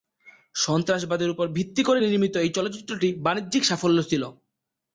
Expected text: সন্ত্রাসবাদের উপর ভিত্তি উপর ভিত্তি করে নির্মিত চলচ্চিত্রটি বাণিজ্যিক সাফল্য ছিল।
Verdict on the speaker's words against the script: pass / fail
fail